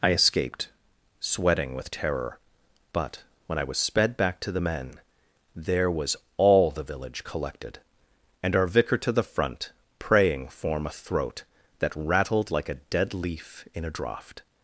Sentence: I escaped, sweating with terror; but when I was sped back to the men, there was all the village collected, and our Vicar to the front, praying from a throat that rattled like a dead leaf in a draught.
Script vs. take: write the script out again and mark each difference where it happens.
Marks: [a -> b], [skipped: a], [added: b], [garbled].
I escaped, sweating with terror; but when I was sped back to the men, there was all the village collected, and our Vicar to the front, praying [from -> form] a throat that rattled like a dead leaf in a draught.